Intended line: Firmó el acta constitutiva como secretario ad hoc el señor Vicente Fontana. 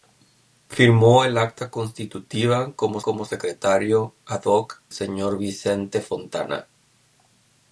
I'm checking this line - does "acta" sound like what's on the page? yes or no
yes